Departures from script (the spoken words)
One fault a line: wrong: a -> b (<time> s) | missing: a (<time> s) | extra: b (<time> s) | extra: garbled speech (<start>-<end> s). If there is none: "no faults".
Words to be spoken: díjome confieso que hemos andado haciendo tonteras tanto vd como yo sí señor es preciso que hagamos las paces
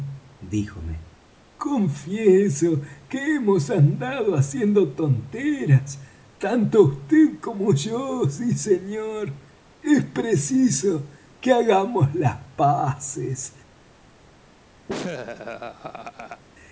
no faults